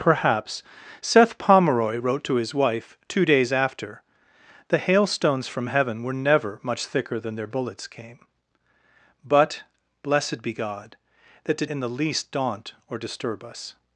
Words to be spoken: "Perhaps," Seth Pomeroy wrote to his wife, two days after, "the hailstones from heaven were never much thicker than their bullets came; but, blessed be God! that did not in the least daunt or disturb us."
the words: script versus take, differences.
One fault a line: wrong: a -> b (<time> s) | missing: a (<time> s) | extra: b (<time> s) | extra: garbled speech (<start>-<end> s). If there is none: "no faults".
missing: not (11.7 s)